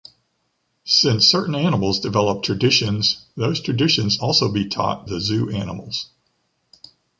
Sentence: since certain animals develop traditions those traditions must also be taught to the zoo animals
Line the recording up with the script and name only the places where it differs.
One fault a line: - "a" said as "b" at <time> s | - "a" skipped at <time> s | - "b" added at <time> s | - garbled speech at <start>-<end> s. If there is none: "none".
- "must" skipped at 4.2 s
- "to" skipped at 5.1 s